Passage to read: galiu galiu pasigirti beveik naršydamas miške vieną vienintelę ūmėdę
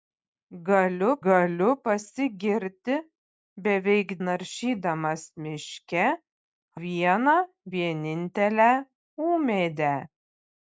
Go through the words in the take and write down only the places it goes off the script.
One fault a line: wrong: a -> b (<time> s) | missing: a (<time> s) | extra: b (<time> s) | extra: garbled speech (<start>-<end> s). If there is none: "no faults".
no faults